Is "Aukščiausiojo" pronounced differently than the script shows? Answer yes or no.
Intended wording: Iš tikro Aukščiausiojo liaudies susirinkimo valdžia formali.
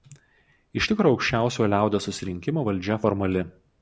no